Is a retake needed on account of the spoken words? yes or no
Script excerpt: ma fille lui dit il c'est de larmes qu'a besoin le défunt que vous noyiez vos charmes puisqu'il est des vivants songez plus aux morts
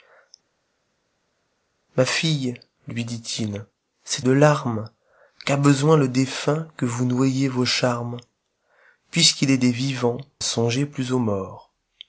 no